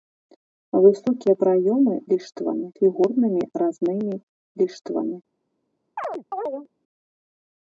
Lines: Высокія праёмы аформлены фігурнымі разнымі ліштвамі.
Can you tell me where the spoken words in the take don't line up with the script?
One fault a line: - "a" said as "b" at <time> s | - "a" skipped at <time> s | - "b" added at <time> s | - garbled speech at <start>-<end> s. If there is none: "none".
- "аформлены" said as "ліштвамі" at 2.1 s